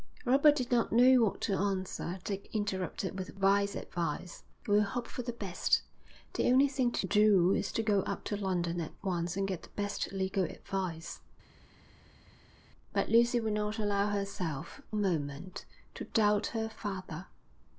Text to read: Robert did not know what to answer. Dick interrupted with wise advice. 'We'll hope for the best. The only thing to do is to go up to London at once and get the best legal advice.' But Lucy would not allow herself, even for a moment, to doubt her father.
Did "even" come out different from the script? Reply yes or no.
yes